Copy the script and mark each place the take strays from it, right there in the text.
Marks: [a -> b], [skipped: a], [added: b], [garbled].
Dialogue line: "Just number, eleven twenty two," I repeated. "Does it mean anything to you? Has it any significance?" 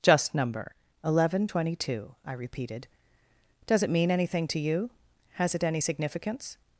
"Just number, eleven twenty two," I repeated. "Does it mean anything to you? Has it any significance?"